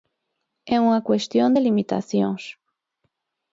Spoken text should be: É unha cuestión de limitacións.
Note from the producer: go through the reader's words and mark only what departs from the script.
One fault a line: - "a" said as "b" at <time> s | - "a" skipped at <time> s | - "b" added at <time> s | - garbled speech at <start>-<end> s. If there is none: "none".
none